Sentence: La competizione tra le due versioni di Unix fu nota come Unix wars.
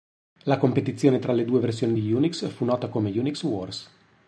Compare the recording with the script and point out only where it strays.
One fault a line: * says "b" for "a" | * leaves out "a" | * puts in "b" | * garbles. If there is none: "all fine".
all fine